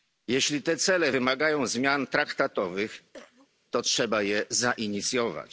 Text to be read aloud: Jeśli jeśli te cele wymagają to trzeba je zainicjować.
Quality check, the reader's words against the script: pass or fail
fail